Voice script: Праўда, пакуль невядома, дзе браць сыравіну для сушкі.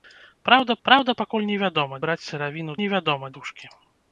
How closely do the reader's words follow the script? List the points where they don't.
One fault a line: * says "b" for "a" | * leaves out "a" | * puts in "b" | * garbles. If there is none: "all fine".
* puts in "праўда"
* leaves out "дзе"
* says "невядома" for "для"